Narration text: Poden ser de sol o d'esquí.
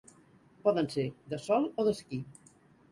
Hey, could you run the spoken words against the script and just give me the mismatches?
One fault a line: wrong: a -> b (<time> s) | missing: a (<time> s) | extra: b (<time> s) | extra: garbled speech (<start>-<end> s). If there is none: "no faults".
no faults